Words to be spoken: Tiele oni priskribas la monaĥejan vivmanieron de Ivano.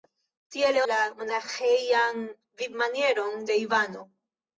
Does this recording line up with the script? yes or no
no